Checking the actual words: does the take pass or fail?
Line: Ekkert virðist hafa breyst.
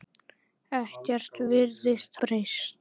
fail